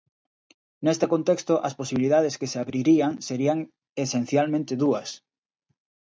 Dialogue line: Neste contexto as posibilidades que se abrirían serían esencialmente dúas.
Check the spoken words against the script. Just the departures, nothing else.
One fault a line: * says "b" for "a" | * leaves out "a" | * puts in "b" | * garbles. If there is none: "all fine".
all fine